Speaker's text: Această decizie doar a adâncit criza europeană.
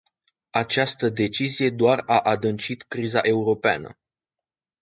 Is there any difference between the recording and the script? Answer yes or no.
no